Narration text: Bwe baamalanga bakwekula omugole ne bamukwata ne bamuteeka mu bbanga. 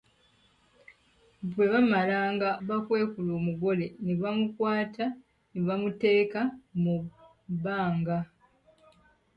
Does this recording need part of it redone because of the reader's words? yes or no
no